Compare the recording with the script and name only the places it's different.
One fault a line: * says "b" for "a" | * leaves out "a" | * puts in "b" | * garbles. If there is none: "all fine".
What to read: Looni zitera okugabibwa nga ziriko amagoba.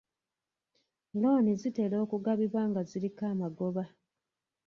all fine